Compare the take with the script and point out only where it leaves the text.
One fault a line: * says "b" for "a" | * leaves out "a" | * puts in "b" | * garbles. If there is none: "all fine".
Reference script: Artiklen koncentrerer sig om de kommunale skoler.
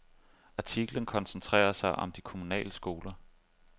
all fine